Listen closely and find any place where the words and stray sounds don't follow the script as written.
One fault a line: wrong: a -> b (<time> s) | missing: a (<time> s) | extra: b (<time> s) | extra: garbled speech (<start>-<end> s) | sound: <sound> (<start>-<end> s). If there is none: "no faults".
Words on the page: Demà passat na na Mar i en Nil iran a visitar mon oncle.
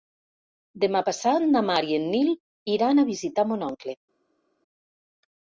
missing: na (1.6 s)